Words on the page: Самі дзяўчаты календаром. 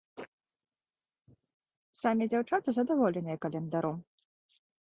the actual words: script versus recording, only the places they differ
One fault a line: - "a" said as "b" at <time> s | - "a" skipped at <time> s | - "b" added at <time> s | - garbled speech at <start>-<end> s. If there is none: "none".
- "задаволеныя" added at 2.8 s